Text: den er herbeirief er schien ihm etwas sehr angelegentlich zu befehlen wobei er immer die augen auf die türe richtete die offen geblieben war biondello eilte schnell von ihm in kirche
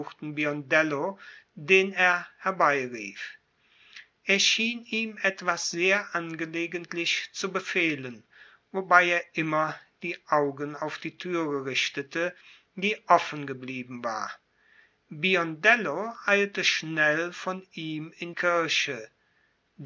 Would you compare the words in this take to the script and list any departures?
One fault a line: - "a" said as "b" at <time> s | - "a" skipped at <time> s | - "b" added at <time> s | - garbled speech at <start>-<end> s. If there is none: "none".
none